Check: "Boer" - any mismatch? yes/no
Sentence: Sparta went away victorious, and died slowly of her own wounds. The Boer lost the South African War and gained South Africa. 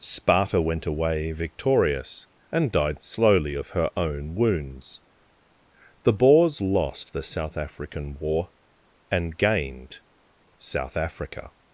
yes